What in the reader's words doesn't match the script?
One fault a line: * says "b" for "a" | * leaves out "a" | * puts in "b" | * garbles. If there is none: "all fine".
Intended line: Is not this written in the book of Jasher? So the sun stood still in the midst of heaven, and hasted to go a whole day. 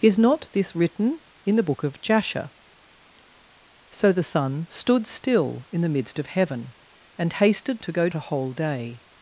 all fine